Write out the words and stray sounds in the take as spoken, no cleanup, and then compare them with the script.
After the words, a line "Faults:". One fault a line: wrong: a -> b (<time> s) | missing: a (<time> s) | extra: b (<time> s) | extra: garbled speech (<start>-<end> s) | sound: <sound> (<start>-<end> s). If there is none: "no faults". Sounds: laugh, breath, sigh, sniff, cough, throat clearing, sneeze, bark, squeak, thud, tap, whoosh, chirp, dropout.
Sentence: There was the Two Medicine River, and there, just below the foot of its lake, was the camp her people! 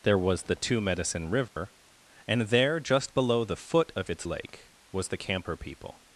There was the Two Medicine River, and there, just below the foot of its lake, was the camp her people!
Faults:
sound: dropout (1.5-1.6 s)